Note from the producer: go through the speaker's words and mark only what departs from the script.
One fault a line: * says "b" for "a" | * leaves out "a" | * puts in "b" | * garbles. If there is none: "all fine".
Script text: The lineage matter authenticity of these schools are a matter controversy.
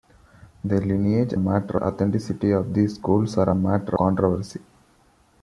all fine